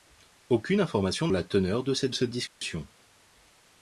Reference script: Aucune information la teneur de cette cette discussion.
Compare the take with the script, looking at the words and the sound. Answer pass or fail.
fail